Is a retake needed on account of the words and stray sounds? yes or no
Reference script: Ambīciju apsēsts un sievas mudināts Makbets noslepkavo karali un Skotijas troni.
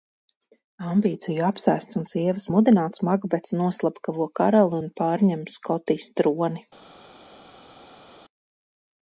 yes